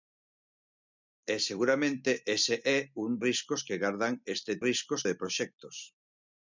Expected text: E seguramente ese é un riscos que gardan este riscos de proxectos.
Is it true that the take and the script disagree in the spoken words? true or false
false